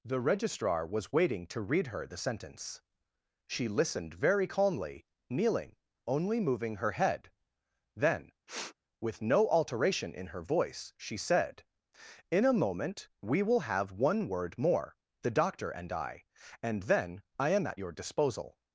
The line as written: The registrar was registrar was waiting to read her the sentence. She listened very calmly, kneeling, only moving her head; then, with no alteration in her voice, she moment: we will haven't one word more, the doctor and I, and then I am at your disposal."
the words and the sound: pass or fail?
fail